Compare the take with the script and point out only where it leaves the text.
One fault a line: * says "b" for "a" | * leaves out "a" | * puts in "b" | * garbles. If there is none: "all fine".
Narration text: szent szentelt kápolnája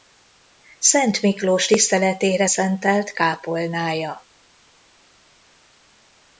* puts in "miklós tiszteletére"